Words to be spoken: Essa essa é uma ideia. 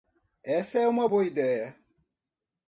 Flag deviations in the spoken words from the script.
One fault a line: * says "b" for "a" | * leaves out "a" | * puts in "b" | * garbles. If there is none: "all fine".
* leaves out "essa"
* puts in "boa"